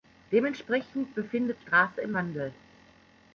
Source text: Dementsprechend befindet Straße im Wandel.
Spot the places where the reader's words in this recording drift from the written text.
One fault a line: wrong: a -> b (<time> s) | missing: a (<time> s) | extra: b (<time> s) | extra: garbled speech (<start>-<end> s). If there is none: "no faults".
no faults